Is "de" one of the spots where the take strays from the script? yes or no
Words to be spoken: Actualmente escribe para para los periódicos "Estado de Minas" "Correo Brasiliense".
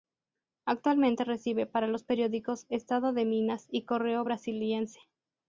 no